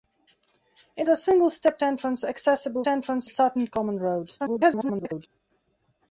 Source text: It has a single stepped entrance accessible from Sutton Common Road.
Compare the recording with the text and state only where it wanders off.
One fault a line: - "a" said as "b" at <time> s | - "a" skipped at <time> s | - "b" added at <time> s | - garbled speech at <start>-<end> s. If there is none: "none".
- "has" skipped at 1.1 s
- "from" said as "entrance" at 2.9 s
- garbled speech at 4.4-5.3 s